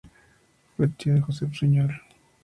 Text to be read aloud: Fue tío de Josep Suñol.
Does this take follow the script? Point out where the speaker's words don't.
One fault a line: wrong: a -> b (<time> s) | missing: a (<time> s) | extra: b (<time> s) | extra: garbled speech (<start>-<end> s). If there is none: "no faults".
no faults